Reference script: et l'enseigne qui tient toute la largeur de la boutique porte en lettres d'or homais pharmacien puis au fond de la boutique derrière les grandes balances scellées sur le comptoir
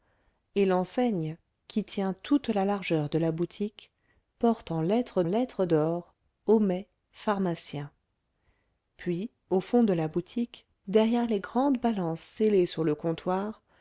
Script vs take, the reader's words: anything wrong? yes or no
yes